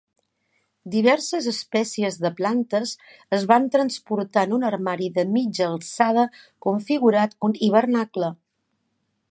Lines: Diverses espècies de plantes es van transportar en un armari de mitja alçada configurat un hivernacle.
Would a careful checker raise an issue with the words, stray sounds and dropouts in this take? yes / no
no